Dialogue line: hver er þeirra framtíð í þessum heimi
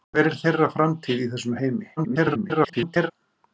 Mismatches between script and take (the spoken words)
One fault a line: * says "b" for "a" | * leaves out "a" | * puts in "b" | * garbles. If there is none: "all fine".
* garbles